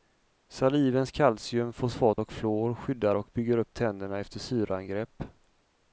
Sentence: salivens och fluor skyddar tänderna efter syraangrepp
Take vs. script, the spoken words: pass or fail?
fail